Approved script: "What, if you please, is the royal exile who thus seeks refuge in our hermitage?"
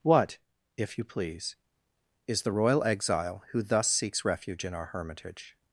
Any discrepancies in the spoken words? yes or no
no